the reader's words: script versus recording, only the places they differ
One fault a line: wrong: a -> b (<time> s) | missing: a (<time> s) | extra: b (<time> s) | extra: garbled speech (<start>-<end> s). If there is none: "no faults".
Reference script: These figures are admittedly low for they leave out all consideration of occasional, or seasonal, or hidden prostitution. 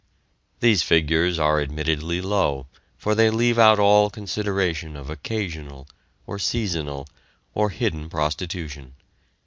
no faults